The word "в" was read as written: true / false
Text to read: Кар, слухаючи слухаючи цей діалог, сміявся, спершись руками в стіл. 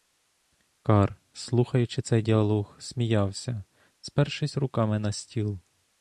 false